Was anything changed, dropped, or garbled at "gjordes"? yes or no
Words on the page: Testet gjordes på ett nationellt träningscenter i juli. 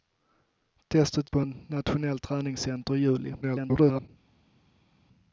yes